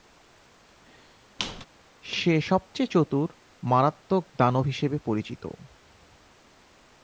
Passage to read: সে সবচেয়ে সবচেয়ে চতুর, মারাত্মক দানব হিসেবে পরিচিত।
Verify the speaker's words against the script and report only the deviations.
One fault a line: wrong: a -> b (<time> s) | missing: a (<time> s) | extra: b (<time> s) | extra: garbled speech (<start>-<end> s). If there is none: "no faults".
missing: সবচেয়ে (2.9 s)